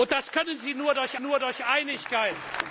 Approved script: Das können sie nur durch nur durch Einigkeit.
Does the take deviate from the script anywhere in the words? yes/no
no